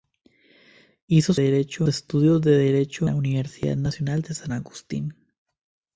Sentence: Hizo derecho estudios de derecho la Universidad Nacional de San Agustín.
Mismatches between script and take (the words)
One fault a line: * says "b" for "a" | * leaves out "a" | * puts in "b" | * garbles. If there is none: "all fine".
all fine